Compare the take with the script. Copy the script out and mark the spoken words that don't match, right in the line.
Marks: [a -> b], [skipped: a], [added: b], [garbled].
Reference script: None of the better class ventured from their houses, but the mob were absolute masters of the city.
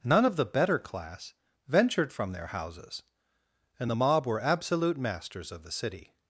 None of the better class ventured from their houses, [but -> and] the mob were absolute masters of the city.